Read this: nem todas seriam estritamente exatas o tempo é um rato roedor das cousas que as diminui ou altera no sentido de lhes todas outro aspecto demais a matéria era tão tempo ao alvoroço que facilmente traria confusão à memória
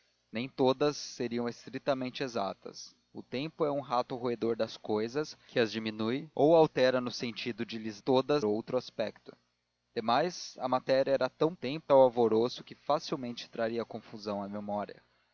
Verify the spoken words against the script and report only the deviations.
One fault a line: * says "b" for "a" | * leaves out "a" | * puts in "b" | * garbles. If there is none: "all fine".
all fine